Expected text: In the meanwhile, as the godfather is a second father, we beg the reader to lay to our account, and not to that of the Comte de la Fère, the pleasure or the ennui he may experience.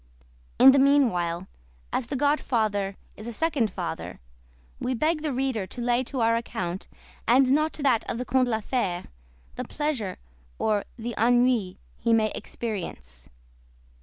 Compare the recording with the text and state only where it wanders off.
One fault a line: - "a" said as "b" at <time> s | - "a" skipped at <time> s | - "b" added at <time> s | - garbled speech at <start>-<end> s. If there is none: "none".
none